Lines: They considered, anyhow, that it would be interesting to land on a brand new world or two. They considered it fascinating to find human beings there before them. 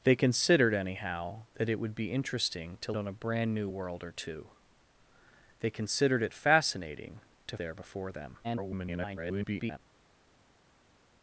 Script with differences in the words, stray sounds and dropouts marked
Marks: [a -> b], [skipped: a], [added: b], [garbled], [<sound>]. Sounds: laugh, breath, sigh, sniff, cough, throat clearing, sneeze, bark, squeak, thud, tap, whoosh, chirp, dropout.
They considered, anyhow, that it would be interesting to [skipped: land] on a brand new world or two. They considered it fascinating to [skipped: find human beings] there before them. [garbled]